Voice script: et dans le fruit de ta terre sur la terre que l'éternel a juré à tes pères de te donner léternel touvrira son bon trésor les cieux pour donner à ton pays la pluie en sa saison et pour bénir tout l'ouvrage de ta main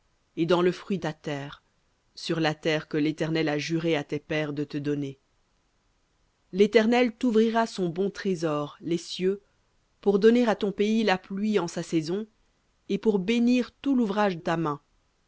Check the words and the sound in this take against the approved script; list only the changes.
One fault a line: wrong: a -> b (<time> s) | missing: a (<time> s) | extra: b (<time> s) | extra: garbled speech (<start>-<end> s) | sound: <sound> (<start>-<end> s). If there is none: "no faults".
missing: de (1.0 s)
missing: de (14.4 s)